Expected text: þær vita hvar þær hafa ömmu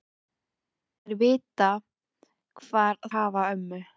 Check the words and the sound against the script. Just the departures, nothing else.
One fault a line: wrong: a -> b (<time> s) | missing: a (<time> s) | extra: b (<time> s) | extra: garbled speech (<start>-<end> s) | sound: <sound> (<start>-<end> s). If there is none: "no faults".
missing: þær (3.0 s)